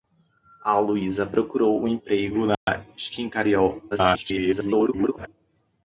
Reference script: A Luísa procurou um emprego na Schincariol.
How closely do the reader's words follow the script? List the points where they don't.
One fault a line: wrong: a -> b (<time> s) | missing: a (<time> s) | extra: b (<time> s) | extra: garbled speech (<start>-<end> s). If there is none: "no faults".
extra: garbled speech (3.9-5.3 s)